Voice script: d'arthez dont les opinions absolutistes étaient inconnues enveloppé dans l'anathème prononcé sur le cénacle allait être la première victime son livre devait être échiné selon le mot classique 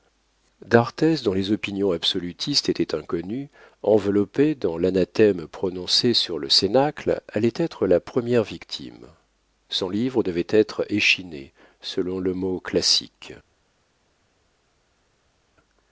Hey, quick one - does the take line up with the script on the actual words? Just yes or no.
yes